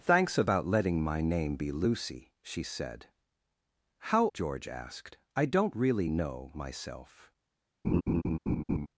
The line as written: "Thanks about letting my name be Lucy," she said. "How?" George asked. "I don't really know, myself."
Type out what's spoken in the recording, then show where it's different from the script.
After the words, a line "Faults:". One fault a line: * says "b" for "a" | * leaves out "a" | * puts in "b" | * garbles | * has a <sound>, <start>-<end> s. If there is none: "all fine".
"Thanks about letting my name be Lucy," she said. "How?" George asked. "I don't really know, myself."
Faults:
* has a laugh, 7.8-8.9 s